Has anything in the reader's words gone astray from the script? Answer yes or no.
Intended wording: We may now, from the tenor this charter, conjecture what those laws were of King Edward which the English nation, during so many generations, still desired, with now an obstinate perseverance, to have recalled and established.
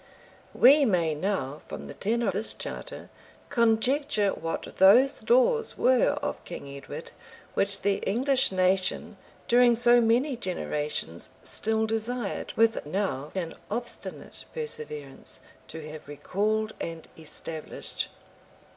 no